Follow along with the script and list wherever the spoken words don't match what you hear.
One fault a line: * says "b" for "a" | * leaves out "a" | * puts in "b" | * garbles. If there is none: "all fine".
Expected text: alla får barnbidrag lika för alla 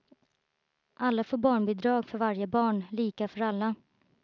* puts in "för varje barn"